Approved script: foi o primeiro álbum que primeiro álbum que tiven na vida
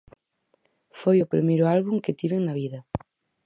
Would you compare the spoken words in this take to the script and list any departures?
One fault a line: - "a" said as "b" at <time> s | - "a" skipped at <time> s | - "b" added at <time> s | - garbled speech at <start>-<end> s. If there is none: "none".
- "primeiro álbum que" skipped at 2.2 s